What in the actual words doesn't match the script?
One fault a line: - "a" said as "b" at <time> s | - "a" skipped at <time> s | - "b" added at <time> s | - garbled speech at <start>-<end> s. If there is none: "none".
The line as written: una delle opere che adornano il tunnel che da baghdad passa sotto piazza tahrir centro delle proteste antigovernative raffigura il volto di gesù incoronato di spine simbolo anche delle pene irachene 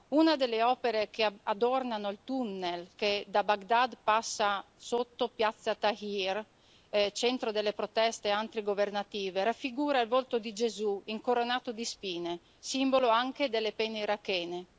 none